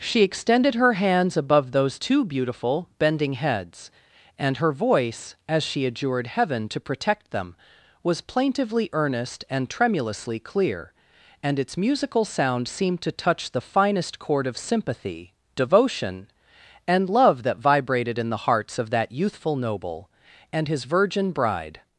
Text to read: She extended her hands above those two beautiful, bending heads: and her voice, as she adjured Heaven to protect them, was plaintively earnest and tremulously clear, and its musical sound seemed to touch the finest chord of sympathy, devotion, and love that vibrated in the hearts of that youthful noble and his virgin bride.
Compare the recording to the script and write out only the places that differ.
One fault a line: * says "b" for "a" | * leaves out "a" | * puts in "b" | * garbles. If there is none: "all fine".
all fine